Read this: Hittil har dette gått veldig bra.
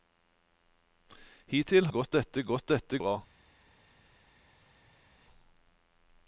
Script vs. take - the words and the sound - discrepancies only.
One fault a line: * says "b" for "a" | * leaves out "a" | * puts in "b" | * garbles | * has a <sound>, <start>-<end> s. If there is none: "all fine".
* says "gått" for "har"
* says "dette" for "veldig"